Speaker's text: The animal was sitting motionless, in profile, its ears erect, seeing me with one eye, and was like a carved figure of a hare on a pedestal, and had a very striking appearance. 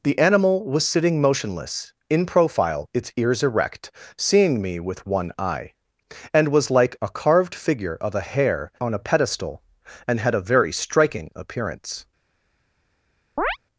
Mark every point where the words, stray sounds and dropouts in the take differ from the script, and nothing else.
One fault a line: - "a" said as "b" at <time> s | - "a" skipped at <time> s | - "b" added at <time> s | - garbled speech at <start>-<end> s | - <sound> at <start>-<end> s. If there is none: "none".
- chirp at 13.4-13.6 s